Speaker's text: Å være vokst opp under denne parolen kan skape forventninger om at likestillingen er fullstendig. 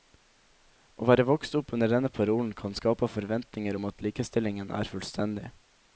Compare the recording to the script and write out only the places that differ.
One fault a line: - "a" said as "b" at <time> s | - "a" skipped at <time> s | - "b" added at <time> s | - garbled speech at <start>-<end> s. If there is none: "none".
none